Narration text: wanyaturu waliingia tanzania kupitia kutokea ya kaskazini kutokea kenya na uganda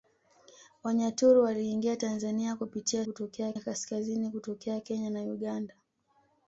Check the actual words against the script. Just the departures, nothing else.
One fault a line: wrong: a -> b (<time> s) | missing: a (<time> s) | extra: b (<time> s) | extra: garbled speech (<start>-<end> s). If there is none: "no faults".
no faults